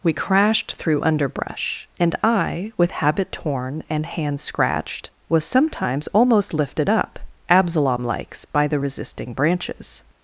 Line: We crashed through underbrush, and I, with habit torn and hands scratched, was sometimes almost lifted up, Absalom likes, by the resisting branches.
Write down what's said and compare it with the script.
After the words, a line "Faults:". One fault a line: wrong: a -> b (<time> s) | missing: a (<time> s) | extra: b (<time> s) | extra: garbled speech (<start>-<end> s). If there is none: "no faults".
We crashed through underbrush, and I, with habit torn and hands scratched, was sometimes almost lifted up, Absalom likes, by the resisting branches.
Faults:
no faults